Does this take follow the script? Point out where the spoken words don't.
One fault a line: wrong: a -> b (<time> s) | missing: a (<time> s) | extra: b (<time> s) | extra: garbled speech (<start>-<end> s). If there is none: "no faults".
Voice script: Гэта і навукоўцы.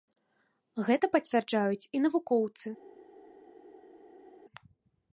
extra: пацвярджаюць (1.1 s)